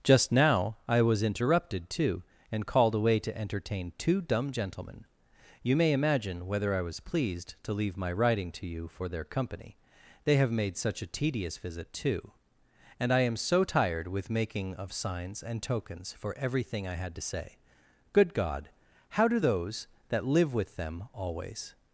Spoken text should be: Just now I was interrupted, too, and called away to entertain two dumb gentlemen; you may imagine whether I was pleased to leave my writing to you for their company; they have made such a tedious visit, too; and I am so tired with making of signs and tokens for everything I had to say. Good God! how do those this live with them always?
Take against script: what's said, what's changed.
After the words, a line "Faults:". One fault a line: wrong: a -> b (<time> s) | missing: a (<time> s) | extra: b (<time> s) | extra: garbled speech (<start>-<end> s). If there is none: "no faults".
Just now I was interrupted, too, and called away to entertain two dumb gentlemen; you may imagine whether I was pleased to leave my writing to you for their company; they have made such a tedious visit, too; and I am so tired with making of signs and tokens for everything I had to say. Good God! how do those that live with them always?
Faults:
wrong: this -> that (20.1 s)